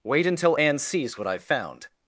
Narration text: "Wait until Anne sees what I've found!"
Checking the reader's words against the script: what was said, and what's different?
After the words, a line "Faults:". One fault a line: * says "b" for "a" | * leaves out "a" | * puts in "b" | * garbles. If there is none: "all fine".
"Wait until Anne sees what I've found!"
Faults:
all fine